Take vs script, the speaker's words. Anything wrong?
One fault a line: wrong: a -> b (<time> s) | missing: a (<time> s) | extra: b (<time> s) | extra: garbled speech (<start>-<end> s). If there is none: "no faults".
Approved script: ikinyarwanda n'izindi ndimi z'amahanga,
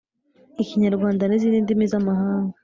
no faults